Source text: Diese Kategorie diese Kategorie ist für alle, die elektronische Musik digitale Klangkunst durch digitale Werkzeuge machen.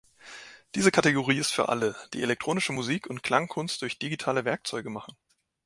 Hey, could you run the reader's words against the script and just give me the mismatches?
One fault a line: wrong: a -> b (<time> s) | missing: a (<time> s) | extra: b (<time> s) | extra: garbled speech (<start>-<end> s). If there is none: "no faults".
missing: diese Kategorie (1.4 s)
wrong: digitale -> und (3.1 s)